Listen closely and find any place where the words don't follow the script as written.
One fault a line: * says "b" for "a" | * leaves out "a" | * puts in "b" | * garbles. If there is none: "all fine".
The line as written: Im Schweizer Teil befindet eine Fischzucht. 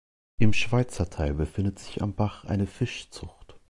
* puts in "sich am Bach"